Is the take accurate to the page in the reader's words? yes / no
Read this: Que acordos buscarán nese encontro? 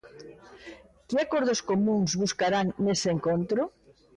no